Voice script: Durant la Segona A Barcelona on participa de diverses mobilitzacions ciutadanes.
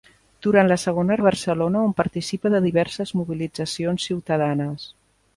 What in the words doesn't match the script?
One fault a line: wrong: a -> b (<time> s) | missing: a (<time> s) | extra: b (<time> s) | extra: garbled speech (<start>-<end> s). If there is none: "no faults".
no faults